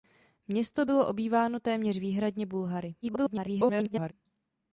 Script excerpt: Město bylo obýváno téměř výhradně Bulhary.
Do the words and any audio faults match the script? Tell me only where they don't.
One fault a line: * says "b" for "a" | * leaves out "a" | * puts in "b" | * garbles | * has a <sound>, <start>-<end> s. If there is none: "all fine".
* garbles